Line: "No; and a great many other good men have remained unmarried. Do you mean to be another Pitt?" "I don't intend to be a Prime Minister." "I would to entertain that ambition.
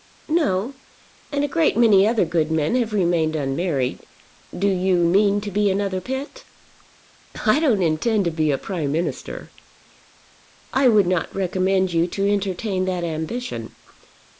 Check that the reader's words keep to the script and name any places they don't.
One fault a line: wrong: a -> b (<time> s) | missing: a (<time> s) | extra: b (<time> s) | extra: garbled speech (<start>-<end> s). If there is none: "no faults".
extra: not recommend you (11.1 s)